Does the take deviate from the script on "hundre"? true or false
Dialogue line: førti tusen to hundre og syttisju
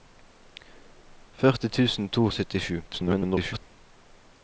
true